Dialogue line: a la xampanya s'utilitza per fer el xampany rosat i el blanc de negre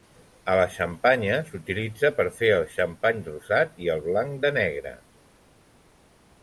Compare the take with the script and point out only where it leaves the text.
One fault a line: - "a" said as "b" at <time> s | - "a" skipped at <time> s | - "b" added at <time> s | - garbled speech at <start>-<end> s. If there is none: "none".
none